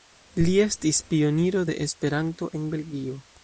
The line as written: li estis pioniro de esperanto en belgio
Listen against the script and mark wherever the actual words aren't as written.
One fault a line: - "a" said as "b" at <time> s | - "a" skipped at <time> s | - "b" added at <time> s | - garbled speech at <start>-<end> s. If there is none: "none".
none